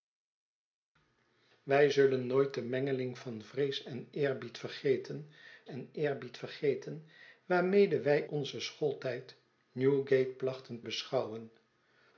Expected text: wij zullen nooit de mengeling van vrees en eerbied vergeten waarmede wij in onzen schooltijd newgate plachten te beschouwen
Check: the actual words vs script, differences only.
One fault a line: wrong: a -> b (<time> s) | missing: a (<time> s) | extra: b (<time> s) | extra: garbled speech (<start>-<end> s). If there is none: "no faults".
extra: en eerbied vergeten (5.6 s)
missing: in (8.2 s)
missing: te (10.8 s)